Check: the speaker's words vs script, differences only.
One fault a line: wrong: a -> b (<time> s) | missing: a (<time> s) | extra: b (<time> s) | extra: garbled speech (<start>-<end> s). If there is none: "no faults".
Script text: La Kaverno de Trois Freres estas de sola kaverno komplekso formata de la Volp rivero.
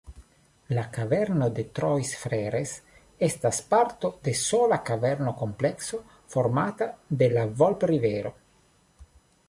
extra: parto (3.7 s)